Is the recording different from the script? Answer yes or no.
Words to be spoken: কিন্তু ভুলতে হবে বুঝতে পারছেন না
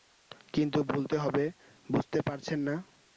no